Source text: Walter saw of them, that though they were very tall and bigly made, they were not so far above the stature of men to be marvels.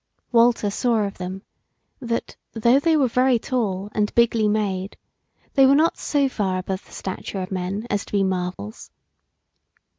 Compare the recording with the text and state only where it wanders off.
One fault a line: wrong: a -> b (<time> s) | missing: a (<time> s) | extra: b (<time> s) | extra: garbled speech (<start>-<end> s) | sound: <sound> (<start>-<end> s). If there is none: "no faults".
extra: as (7.9 s)
sound: dropout (8.5-8.6 s)